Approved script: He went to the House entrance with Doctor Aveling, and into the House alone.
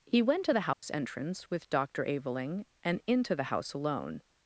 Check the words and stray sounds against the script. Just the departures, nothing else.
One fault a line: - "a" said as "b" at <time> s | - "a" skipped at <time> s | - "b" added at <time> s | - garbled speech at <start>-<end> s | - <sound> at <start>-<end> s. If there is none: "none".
- dropout at 0.7-0.8 s